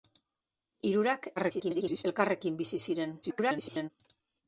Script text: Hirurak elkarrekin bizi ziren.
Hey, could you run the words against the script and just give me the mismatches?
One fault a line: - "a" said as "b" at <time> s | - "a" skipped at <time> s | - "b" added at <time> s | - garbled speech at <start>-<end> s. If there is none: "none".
- garbled speech at 1.4-2.0 s
- garbled speech at 3.2-3.9 s